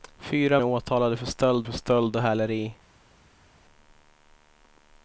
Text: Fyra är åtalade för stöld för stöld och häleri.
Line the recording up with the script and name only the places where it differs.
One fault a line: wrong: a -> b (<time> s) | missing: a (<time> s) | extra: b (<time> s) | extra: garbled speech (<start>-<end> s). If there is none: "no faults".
no faults